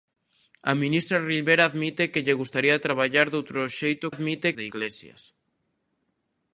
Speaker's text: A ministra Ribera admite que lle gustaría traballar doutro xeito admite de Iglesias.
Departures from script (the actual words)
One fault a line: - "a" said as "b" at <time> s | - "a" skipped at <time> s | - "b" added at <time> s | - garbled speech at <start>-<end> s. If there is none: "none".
none